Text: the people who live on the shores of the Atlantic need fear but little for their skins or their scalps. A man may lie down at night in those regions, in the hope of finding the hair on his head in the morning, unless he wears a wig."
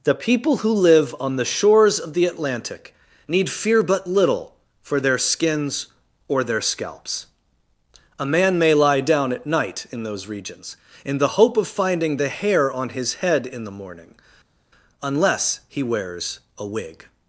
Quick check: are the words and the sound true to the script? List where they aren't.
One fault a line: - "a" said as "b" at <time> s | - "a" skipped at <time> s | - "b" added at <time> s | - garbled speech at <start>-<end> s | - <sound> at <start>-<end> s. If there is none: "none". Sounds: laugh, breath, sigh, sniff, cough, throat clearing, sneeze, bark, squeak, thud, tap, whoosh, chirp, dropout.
none